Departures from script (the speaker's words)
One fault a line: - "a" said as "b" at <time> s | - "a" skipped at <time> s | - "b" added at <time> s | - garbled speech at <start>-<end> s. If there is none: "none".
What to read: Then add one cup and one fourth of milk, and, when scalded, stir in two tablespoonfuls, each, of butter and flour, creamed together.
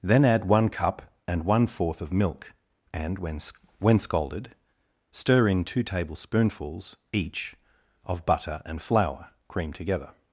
- "when" added at 3.8 s